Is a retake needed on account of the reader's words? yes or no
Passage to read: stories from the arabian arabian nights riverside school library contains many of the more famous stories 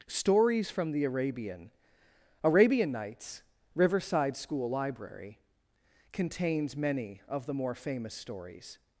no